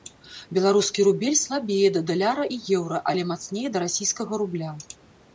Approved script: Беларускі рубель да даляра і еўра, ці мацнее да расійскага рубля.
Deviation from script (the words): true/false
true